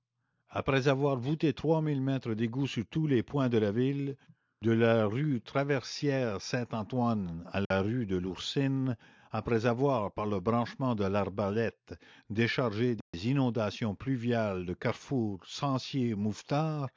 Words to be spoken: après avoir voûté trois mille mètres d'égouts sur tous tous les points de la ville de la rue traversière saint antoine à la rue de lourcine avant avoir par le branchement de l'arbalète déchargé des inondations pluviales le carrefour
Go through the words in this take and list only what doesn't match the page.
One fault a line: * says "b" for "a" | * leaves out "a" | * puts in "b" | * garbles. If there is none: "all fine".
* leaves out "tous"
* says "après" for "avant"